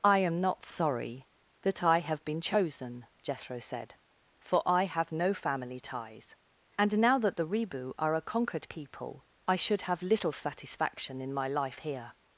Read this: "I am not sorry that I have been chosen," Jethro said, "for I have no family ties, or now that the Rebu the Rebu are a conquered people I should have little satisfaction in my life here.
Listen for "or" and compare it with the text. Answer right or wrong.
wrong